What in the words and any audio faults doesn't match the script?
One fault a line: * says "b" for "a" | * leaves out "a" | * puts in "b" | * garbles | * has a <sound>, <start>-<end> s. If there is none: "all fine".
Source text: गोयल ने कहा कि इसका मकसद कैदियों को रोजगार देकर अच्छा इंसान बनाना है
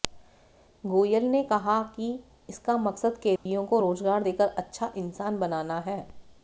* has a dropout, 3.4-3.5 s